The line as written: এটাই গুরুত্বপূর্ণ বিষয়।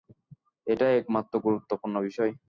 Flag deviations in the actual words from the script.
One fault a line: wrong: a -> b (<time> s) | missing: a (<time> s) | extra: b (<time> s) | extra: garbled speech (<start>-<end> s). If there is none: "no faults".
extra: একমাত্র (1.0 s)